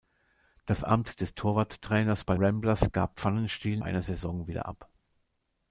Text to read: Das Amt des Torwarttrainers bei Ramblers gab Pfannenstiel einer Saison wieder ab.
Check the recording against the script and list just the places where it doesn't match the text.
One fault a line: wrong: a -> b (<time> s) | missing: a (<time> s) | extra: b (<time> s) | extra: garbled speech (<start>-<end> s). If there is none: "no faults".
no faults